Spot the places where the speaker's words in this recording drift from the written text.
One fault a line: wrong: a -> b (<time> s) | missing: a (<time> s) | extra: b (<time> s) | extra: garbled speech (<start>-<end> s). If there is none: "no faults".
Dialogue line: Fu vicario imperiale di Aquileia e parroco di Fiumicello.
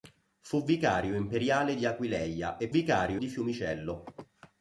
wrong: parroco -> vicario (2.7 s)